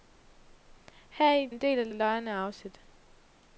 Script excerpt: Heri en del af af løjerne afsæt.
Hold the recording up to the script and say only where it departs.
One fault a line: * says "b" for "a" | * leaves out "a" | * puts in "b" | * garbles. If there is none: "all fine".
all fine